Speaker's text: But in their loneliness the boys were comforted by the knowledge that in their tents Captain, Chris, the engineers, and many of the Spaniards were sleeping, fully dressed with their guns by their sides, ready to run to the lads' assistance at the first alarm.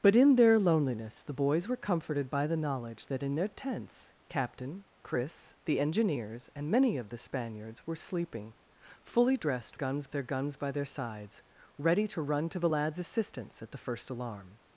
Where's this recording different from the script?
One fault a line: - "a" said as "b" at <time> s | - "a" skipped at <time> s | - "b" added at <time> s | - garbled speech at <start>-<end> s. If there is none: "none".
- "with" said as "guns" at 9.7 s